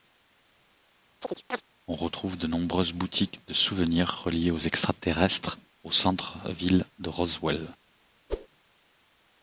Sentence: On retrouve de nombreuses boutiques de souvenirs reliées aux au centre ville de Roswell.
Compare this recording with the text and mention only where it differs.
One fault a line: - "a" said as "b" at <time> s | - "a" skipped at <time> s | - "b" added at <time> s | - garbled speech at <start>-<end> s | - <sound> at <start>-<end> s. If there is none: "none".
- chirp at 1.2-1.6 s
- "extraterrestres" added at 4.6 s
- whoosh at 8.3-8.5 s